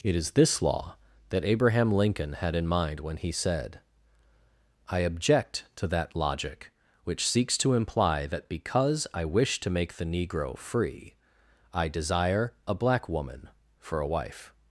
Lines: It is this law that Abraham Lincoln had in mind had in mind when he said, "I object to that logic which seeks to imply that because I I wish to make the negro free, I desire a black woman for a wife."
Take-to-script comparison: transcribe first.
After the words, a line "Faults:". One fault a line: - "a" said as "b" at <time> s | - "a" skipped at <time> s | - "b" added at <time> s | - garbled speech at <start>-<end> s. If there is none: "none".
It is this law that Abraham Lincoln had in mind when he said, "I object to that logic which seeks to imply that because I wish to make the negro free, I desire a black woman for a wife."
Faults:
- "had in mind" skipped at 3.0 s
- "I" skipped at 9.2 s